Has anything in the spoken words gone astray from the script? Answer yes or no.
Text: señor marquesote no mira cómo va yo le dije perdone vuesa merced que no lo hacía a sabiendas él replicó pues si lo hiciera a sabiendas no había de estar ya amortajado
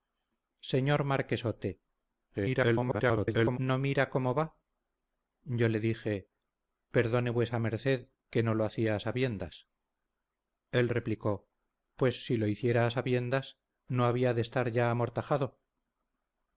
yes